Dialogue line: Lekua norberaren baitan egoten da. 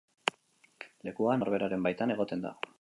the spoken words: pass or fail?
pass